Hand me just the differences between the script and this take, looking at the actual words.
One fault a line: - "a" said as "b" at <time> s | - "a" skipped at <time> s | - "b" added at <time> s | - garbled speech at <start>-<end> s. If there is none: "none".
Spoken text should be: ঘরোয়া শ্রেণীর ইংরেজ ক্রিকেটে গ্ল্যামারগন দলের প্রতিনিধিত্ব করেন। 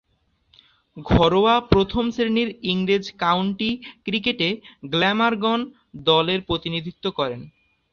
- "প্রথম" added at 1.7 s
- "কাউন্টি" added at 3.2 s